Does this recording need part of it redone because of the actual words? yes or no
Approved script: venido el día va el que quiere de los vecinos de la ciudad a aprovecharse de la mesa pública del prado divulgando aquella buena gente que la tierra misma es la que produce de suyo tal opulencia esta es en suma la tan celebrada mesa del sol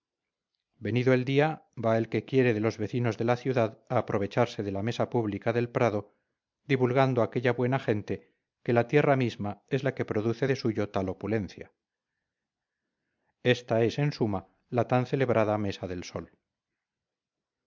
no